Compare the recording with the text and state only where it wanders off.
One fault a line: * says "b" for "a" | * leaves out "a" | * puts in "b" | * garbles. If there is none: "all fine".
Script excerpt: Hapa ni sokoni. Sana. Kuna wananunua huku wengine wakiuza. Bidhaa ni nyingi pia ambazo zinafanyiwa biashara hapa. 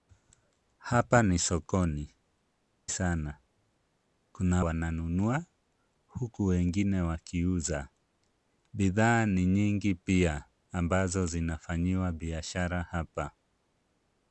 all fine